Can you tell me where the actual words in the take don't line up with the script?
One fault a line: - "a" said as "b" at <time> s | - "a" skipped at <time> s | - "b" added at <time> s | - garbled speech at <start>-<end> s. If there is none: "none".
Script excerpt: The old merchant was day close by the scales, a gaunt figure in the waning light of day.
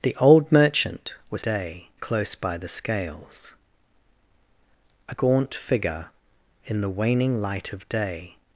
none